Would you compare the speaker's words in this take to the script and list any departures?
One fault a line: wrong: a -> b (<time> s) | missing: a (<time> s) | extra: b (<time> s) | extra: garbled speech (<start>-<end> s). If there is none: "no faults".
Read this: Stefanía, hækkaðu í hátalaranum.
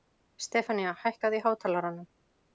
no faults